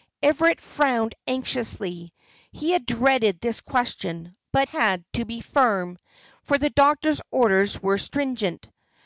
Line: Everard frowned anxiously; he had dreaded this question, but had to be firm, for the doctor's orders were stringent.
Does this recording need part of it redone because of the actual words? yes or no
no